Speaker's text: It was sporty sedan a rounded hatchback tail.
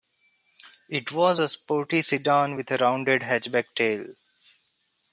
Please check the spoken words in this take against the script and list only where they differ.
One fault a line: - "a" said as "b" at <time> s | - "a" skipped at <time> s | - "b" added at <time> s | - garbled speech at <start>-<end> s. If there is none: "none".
- "a" added at 1.4 s
- "with" added at 2.5 s